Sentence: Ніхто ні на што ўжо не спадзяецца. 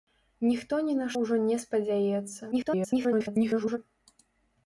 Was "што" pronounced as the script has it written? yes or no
no